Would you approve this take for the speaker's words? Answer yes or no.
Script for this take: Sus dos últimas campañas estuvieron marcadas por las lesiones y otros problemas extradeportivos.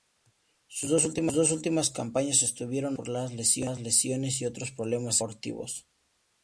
yes